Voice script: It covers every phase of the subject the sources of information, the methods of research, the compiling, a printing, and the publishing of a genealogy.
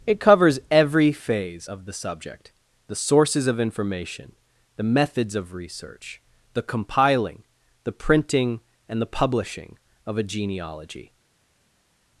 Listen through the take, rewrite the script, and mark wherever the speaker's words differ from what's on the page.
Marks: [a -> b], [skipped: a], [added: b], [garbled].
It covers every phase of the subject the sources of information, the methods of research, the compiling, [a -> the] printing, and the publishing of a genealogy.